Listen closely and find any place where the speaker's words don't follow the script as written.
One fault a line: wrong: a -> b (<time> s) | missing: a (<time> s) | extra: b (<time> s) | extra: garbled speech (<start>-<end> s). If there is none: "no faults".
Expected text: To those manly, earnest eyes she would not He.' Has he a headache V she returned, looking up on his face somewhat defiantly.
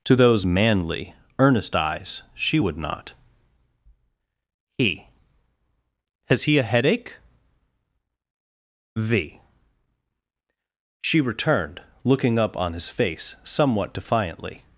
no faults